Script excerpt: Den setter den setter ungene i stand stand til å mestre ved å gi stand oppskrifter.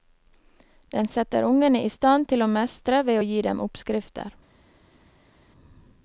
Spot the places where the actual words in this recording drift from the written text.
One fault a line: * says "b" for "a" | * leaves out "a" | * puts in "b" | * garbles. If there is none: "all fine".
* leaves out "den setter"
* leaves out "stand"
* says "dem" for "stand"